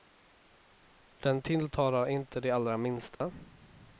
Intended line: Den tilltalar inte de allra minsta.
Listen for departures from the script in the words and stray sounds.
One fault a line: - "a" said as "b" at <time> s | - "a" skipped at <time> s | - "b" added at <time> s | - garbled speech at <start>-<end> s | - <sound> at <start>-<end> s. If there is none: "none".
- dropout at 3.1-3.2 s